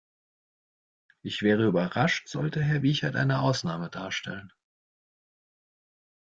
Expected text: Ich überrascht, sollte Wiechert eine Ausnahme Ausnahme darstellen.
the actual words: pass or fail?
fail